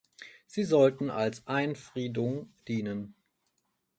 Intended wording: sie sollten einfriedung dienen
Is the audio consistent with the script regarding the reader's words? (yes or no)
no